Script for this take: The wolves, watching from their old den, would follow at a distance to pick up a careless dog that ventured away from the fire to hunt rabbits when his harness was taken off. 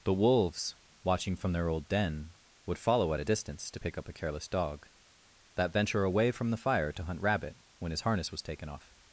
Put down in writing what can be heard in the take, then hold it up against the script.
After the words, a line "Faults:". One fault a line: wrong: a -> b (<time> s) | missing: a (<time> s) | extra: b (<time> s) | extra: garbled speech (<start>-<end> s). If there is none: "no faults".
The wolves, watching from their old den, would follow at a distance to pick up a careless dog that venture away from the fire to hunt rabbit when his harness was taken off.
Faults:
wrong: ventured -> venture (5.7 s)
wrong: rabbits -> rabbit (7.2 s)